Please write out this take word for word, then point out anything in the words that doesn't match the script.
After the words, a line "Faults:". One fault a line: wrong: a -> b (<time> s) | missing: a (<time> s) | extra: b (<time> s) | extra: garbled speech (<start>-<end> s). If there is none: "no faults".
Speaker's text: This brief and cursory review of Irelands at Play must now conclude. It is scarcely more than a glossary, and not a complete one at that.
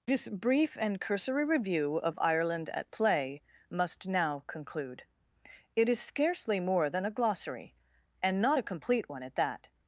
This brief and cursory review of Ireland at Play must now conclude. It is scarcely more than a glossary, and not a complete one at that.
Faults:
wrong: Irelands -> Ireland (2.2 s)